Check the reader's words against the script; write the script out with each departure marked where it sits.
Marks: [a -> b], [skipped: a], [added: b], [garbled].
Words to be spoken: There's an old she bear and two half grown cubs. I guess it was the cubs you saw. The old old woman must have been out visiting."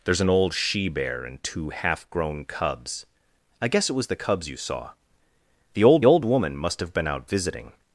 There's an old she bear and two half grown cubs. I guess it was the cubs you saw. The old old woman must have been out visiting."